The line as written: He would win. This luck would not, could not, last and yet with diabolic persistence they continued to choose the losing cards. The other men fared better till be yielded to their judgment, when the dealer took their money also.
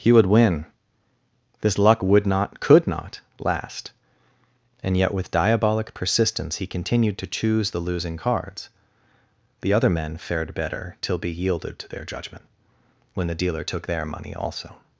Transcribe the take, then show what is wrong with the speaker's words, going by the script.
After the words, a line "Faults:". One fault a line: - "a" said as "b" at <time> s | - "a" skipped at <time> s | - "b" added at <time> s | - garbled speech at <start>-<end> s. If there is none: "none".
He would win. This luck would not, could not, last and yet with diabolic persistence he continued to choose the losing cards. The other men fared better till be yielded to their judgment, when the dealer took their money also.
Faults:
- "they" said as "he" at 6.6 s